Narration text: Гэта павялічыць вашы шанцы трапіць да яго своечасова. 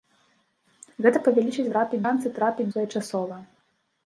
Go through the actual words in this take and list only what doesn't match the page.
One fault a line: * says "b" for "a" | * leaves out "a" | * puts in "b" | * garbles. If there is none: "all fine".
* says "трапіць" for "вашы"
* leaves out "да яго"